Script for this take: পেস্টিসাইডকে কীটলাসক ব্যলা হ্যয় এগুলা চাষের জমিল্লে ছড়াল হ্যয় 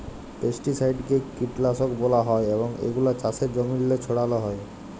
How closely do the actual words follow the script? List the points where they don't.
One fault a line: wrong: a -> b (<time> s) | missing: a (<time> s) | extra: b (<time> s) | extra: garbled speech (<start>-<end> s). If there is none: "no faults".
extra: এবং (2.5 s)